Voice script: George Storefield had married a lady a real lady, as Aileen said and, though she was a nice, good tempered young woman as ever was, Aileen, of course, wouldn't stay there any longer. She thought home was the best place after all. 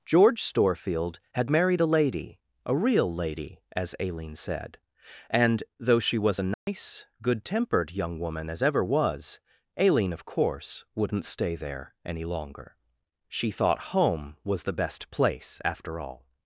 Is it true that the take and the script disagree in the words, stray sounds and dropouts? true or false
true